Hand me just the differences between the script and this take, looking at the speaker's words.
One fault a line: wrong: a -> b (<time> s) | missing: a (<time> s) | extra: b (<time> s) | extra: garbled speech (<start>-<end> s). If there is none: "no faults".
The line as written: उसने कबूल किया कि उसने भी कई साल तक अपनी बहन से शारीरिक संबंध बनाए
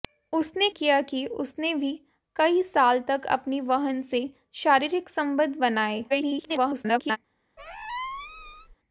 missing: कबूल (0.7 s)
extra: garbled speech (6.1-7.2 s)